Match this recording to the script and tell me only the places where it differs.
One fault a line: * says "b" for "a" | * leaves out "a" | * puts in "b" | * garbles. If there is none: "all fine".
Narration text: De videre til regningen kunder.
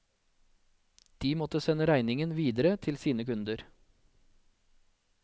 * puts in "måtte sende regningen"
* says "sine" for "regningen"